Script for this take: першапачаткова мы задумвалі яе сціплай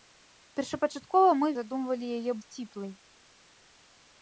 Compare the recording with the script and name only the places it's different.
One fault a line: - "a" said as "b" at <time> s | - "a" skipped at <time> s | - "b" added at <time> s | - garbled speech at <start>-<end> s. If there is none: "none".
none